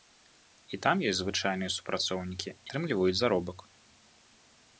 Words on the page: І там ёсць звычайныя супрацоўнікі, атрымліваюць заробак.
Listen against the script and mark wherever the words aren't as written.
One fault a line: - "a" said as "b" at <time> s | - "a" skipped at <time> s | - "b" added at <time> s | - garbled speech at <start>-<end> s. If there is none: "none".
none